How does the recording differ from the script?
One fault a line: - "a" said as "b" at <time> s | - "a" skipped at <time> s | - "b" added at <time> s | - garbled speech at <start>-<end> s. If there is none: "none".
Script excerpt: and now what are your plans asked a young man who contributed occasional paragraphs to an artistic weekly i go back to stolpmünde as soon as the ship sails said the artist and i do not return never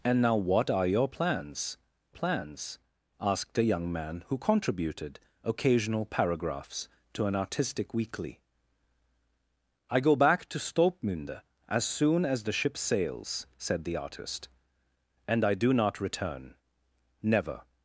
- "plans" added at 2.1 s